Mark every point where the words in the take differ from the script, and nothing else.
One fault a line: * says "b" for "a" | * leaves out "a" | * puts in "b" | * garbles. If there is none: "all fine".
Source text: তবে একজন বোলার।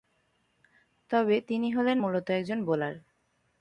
* puts in "তিনি হলেন মূলত"